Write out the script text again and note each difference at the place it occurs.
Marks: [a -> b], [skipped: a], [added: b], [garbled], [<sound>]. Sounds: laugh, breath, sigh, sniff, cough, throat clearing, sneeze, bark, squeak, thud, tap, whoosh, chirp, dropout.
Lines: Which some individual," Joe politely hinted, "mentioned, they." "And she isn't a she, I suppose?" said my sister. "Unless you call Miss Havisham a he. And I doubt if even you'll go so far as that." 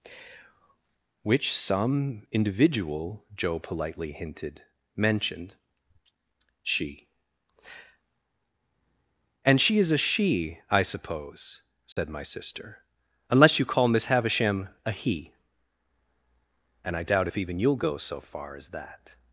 Which some individual," Joe politely hinted, "mentioned, [they." -> she] "And she [isn't -> is] a she, I suppose?" said [dropout] my sister. "Unless you call Miss Havisham a he. And I doubt if even you'll go so far as that."